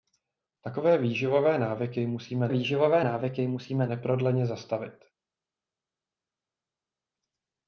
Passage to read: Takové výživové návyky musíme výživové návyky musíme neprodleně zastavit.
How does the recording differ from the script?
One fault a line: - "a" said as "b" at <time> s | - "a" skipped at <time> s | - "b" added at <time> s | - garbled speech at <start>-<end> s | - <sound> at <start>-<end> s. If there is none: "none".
none